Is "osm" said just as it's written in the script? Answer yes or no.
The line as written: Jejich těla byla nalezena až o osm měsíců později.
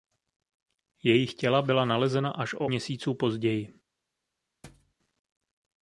no